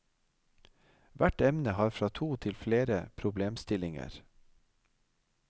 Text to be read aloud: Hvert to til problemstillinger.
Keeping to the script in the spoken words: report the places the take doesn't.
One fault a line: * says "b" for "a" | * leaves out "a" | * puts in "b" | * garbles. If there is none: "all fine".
* puts in "emne har fra"
* puts in "flere"